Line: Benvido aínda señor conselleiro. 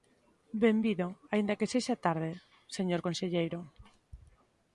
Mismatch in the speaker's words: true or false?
true